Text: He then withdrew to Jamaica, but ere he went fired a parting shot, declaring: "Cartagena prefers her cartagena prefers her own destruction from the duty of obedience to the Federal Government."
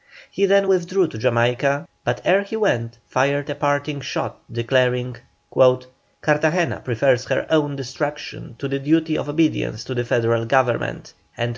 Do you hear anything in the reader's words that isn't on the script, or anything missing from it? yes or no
yes